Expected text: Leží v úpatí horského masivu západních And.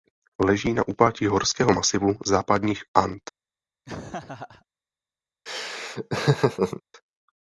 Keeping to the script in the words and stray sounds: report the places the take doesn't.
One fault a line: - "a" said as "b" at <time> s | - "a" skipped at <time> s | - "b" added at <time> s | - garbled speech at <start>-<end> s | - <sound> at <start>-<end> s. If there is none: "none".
- "v" said as "na" at 0.7 s
- laugh at 3.9-4.7 s
- laugh at 5.5-6.8 s